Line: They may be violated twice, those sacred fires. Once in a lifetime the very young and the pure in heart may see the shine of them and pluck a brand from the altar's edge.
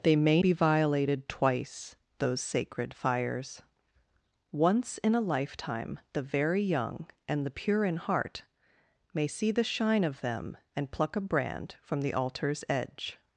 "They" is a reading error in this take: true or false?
false